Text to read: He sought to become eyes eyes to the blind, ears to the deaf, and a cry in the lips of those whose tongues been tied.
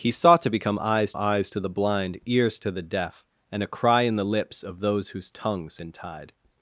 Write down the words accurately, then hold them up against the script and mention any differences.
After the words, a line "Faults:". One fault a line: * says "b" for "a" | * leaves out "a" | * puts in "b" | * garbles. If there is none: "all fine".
He sought to become eyes eyes to the blind, ears to the deaf, and a cry in the lips of those whose tongues been tied.
Faults:
all fine